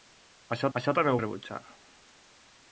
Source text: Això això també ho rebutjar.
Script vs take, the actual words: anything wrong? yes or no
no